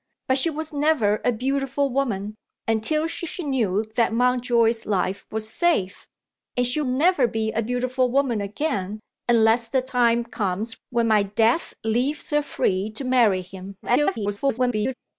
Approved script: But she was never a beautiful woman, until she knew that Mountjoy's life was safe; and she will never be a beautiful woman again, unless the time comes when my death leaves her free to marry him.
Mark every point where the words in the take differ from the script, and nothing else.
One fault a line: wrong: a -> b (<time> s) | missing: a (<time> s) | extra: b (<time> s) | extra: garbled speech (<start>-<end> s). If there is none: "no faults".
extra: she (3.2 s)
missing: will (6.8 s)
extra: garbled speech (13.8-14.9 s)